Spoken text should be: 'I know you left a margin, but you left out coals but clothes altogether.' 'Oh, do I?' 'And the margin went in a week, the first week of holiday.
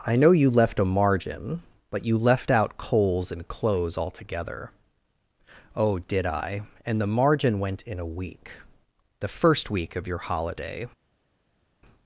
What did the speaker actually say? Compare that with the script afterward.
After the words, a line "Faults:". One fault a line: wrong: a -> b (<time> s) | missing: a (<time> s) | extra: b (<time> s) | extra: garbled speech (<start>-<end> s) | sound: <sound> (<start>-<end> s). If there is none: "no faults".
'I know you left a margin, but you left out coals and clothes altogether.' 'Oh, did I?' 'And the margin went in a week, the first week of your holiday.
Faults:
wrong: but -> and (3.3 s)
wrong: do -> did (6.0 s)
extra: your (10.1 s)